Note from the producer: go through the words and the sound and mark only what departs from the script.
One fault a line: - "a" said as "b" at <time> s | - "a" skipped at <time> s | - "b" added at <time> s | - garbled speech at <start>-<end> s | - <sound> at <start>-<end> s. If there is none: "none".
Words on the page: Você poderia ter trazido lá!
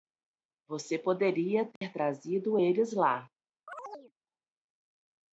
- dropout at 1.8-1.8 s
- "eles" added at 2.6 s
- chirp at 3.7-4.1 s